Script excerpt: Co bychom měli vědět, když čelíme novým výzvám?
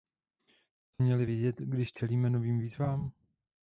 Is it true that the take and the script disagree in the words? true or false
true